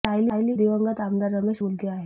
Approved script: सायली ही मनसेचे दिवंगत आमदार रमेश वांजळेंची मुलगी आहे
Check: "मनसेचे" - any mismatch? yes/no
yes